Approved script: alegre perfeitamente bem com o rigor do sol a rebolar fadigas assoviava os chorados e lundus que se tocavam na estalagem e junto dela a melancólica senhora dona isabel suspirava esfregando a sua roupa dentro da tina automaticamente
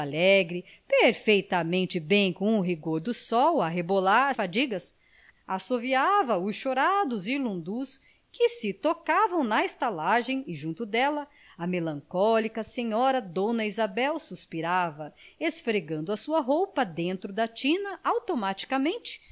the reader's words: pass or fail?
pass